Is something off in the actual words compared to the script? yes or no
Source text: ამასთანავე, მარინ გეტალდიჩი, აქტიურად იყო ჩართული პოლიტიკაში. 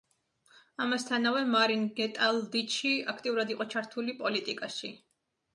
no